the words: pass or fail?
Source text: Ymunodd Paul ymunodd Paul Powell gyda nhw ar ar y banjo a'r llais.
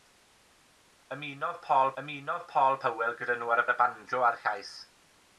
pass